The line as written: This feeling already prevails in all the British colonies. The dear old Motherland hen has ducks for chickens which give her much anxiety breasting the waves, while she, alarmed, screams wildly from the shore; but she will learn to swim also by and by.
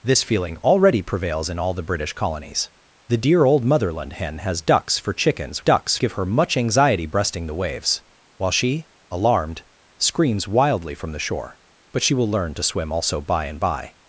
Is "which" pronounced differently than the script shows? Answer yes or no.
yes